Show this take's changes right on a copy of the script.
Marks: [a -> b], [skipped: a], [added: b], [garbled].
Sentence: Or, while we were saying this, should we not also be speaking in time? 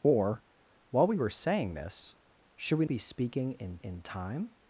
Or, while we were saying this, should we [skipped: not also] be speaking in [added: in] time?